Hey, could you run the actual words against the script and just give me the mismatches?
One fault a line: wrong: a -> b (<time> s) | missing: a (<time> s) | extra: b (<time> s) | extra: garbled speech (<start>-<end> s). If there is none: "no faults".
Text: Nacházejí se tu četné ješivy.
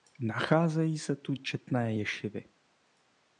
no faults